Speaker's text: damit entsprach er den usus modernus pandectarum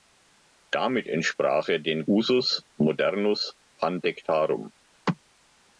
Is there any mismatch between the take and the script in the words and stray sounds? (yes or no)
no